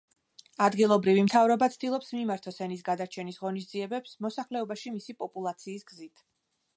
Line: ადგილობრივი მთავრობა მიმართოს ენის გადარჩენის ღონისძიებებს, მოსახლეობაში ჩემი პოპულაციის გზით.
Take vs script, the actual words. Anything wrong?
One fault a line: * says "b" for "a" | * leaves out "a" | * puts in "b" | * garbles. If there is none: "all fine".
* puts in "ცდილობს"
* says "მისი" for "ჩემი"